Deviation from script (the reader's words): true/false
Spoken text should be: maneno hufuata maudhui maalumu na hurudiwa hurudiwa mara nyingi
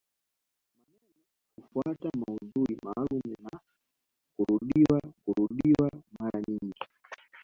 false